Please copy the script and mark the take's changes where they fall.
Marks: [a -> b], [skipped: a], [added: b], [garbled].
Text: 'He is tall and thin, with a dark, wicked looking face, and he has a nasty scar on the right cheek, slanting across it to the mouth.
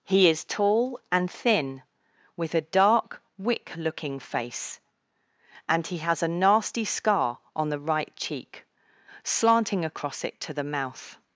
'He is tall and thin, with a dark, [wicked -> wick] looking face, and he has a nasty scar on the right cheek, slanting across it to the mouth.